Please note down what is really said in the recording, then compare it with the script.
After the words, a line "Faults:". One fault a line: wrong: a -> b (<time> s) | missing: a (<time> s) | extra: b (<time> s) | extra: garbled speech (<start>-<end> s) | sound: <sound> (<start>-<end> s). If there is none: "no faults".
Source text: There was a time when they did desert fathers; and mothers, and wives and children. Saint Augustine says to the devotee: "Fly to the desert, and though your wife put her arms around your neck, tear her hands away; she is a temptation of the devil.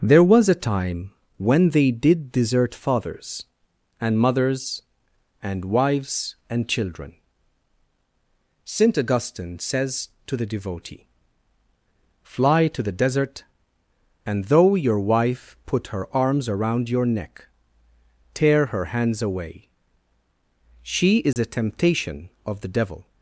There was a time when they did desert fathers; and mothers, and wives and children. Saint Augustine says to the devotee: "Fly to the desert, and though your wife put her arms around your neck, tear her hands away; she is a temptation of the devil.
Faults:
sound: dropout (21.3-21.4 s)